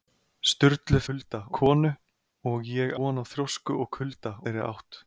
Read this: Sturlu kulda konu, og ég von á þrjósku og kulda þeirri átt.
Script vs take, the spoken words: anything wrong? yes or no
no